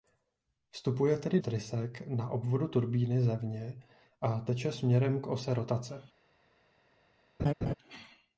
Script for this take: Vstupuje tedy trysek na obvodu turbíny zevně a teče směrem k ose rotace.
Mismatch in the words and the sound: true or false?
true